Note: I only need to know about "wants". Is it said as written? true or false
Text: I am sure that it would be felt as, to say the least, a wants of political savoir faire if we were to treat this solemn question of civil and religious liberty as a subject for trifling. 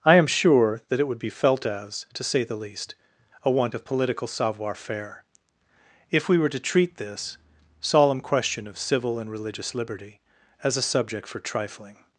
false